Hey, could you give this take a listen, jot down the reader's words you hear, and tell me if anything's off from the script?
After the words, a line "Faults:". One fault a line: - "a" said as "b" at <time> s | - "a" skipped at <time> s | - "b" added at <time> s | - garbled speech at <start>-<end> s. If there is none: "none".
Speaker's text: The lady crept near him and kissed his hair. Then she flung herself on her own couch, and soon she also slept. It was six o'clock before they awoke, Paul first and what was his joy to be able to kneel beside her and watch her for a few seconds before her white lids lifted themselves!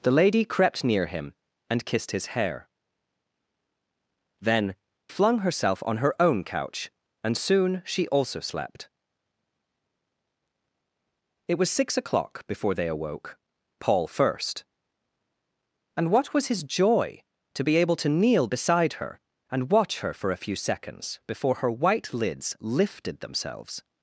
The lady crept near him and kissed his hair. Then flung herself on her own couch, and soon she also slept. It was six o'clock before they awoke, Paul first and what was his joy to be able to kneel beside her and watch her for a few seconds before her white lids lifted themselves!
Faults:
- "she" skipped at 4.7 s